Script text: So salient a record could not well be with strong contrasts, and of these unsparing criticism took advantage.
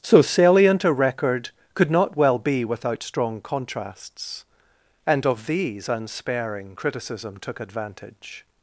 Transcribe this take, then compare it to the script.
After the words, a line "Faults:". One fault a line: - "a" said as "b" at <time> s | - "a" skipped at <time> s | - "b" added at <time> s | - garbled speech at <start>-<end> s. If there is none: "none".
So salient a record could not well be without strong contrasts, and of these unsparing criticism took advantage.
Faults:
- "with" said as "without" at 2.6 s